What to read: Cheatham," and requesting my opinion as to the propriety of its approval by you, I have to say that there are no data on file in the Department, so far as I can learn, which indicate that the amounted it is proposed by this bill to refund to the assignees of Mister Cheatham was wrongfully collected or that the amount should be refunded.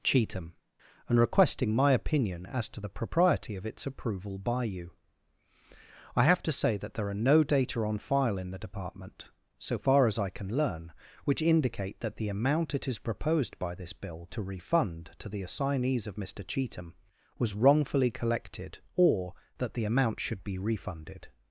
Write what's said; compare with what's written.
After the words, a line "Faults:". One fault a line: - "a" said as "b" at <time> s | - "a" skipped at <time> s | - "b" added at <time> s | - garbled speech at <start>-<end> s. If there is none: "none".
Cheatham," and requesting my opinion as to the propriety of its approval by you, I have to say that there are no data on file in the Department, so far as I can learn, which indicate that the amount it is proposed by this bill to refund to the assignees of Mister Cheatham was wrongfully collected or that the amount should be refunded.
Faults:
- "amounted" said as "amount" at 12.3 s